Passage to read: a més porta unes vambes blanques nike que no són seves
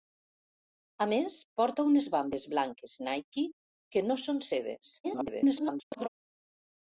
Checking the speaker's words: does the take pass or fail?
fail